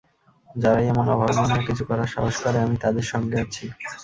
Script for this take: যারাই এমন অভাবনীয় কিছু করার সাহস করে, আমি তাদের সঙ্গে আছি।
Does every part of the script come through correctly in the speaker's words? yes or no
yes